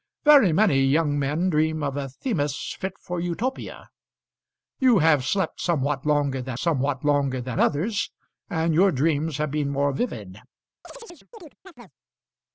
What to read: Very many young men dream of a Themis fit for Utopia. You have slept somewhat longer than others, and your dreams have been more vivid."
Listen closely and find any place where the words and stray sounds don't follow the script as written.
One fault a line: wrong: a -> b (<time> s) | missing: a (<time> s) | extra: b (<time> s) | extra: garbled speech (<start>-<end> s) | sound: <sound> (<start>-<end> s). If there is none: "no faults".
extra: somewhat longer than (6.6 s)
sound: chirp (10.8-11.9 s)